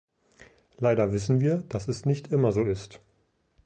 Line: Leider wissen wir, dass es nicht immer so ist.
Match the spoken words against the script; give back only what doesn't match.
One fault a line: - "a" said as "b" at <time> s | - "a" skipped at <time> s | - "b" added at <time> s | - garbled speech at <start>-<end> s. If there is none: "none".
none